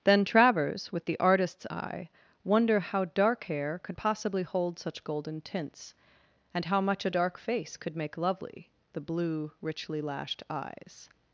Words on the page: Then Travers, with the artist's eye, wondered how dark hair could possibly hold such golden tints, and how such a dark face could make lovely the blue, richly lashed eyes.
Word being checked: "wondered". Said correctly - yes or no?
no